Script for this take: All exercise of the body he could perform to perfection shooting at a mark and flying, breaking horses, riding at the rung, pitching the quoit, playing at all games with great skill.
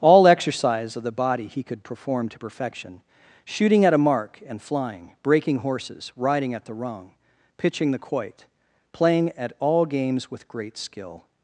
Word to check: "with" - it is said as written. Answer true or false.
true